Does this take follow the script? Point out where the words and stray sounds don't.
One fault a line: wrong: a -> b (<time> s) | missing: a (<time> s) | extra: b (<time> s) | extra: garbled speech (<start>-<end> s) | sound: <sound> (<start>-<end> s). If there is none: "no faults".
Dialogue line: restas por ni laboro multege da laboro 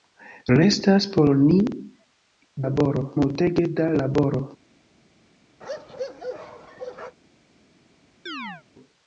sound: bark (5.6-7.2 s)
sound: chirp (8.3-8.6 s)